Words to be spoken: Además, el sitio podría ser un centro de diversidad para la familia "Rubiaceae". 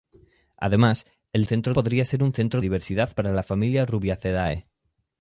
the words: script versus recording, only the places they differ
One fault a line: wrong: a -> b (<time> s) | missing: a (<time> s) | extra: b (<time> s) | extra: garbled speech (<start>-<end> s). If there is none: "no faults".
wrong: sitio -> centro (1.5 s)
missing: de (2.6 s)